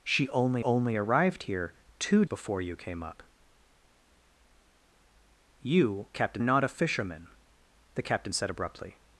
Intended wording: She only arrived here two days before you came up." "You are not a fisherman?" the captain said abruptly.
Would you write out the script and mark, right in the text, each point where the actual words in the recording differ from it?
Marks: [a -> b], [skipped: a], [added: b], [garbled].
She only [added: only] arrived here two [skipped: days] before you came up." "You [are -> captain] not a fisherman?" the captain said abruptly.